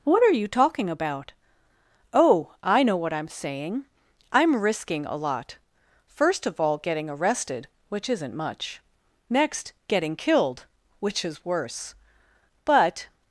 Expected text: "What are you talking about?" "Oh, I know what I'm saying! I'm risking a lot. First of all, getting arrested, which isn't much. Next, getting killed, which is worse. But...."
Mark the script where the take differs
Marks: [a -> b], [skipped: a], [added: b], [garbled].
"What are you talking about?" "Oh, I know what I'm saying! I'm risking a lot. First of all, getting arrested, which isn't much. Next, getting killed, which is worse. But...."